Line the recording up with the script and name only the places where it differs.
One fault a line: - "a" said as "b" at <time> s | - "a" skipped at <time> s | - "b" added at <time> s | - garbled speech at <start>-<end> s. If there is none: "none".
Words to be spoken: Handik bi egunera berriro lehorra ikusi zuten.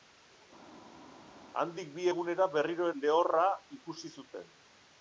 none